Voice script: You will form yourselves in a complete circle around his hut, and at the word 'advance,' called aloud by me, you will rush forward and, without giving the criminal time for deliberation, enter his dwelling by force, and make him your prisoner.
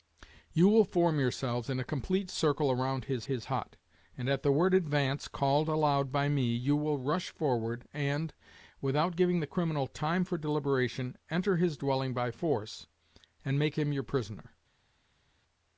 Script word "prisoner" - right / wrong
right